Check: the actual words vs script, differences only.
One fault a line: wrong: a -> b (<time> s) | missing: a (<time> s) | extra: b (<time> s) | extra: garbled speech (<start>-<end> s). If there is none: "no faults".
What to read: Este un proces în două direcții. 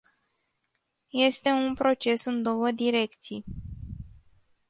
no faults